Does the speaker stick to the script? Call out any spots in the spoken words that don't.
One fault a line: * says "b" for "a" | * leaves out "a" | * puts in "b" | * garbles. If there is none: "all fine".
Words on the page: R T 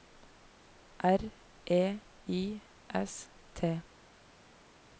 * puts in "E I S"